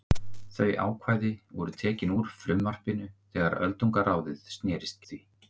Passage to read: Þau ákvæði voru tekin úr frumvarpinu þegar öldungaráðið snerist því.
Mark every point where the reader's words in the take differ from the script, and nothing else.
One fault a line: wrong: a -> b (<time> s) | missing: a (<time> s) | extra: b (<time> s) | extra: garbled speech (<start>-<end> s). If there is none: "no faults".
no faults